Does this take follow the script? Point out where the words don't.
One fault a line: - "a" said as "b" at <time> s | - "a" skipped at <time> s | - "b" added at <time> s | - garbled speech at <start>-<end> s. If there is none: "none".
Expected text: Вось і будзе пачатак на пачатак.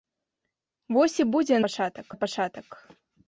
none